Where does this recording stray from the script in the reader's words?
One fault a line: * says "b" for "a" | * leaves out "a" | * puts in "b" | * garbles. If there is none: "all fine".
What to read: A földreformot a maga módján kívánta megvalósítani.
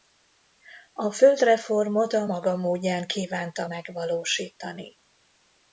all fine